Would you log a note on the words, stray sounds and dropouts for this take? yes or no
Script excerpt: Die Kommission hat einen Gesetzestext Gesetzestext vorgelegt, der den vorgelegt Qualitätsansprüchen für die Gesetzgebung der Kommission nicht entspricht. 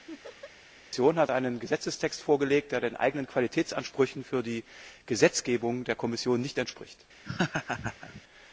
yes